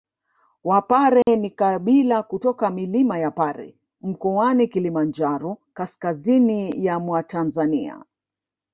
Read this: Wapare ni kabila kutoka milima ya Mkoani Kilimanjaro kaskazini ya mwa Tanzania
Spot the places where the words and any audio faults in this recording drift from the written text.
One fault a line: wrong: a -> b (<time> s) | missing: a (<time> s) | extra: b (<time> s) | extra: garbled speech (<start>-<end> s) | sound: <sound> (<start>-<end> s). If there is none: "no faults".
sound: dropout (1.2-1.3 s)
extra: Pare (3.3 s)